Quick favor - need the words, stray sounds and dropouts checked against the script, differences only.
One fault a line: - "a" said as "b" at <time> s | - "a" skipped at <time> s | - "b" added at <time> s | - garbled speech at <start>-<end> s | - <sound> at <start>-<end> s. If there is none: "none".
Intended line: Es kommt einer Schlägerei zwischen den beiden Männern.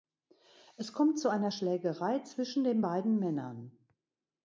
- "zu" added at 1.2 s